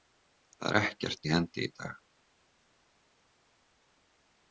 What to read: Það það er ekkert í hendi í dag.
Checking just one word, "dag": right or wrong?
right